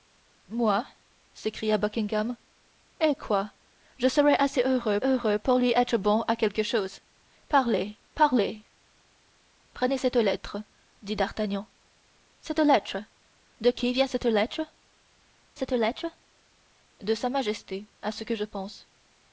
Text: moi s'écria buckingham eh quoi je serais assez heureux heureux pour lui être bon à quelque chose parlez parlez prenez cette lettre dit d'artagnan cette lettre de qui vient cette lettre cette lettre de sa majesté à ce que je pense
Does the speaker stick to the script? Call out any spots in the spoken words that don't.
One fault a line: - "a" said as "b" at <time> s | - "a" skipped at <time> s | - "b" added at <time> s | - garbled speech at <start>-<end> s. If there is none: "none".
none